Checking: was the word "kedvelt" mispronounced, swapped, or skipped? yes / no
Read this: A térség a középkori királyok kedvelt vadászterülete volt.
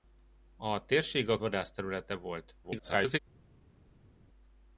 yes